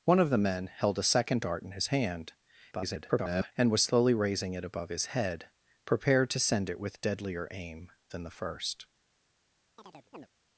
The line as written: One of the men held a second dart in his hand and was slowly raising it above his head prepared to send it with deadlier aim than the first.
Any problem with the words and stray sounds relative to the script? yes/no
yes